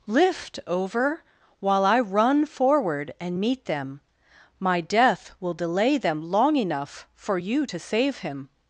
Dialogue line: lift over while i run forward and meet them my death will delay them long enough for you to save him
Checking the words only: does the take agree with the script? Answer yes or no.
yes